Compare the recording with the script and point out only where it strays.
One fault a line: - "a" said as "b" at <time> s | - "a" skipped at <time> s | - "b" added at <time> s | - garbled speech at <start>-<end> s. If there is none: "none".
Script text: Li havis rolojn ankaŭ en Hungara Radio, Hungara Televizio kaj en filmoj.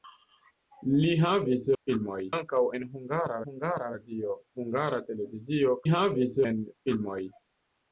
- "rolojn" said as "filmoj" at 1.8 s
- "Hungara" added at 3.4 s
- "kaj" said as "havis" at 5.9 s